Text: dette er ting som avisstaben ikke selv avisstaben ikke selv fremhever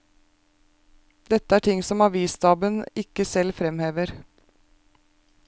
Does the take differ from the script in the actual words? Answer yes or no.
yes